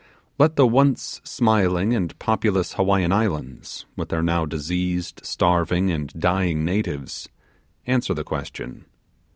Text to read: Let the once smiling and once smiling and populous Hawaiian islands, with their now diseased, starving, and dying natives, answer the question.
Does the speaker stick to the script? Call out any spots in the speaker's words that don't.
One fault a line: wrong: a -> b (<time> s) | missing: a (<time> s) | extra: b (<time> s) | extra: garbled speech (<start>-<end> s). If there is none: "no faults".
missing: once smiling and (2.2 s)